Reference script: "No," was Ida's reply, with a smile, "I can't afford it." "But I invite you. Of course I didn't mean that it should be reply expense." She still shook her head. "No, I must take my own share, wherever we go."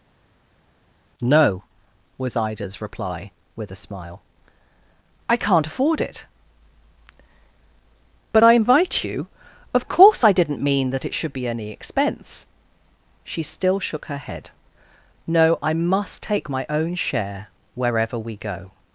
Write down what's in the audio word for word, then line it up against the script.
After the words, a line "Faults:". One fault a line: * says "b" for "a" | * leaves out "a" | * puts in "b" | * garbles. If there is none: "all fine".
"No," was Ida's reply, with a smile, "I can't afford it." "But I invite you. Of course I didn't mean that it should be any expense." She still shook her head. "No, I must take my own share, wherever we go."
Faults:
* says "any" for "reply"